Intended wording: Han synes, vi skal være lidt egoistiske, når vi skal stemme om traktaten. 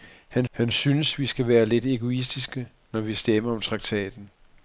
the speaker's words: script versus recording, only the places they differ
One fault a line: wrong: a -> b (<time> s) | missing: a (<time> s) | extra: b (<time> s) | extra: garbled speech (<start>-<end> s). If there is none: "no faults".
extra: han (0.5 s)
missing: skal (3.1 s)